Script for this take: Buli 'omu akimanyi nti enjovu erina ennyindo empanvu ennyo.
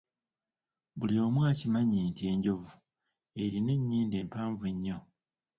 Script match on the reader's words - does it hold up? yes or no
yes